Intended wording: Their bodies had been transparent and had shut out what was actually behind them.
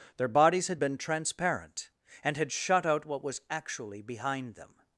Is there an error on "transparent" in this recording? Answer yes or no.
no